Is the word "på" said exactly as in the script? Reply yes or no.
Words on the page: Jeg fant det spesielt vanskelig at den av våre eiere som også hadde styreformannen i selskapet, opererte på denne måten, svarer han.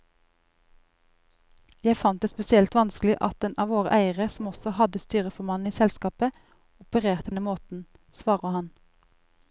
no